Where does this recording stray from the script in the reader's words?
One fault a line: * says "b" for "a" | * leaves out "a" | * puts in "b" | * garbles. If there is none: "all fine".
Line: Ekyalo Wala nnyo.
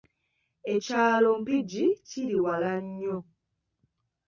* puts in "Mpigi kiri"